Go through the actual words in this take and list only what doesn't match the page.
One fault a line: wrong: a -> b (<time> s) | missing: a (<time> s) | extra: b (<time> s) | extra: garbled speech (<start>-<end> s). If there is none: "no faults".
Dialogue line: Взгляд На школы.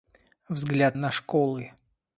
no faults